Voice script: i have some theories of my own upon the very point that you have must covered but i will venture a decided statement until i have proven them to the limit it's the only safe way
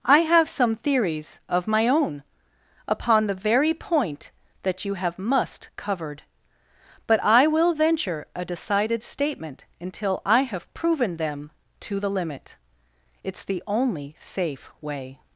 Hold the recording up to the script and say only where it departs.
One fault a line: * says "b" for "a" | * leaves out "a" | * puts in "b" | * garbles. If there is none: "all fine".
all fine